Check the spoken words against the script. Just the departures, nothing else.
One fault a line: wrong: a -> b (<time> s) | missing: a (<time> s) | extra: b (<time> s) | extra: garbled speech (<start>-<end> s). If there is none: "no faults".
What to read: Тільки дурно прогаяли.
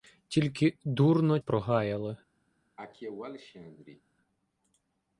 no faults